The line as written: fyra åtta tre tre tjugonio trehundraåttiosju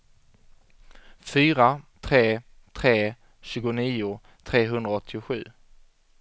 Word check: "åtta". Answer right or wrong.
wrong